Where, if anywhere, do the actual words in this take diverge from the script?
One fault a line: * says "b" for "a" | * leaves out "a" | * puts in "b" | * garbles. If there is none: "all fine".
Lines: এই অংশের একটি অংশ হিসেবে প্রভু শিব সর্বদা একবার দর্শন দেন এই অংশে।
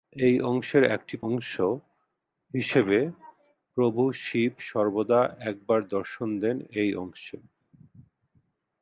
all fine